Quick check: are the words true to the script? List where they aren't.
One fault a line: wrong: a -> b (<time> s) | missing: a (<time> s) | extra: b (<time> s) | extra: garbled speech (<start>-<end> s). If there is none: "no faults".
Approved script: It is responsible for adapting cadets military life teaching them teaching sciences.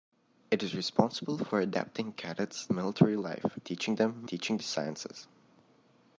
no faults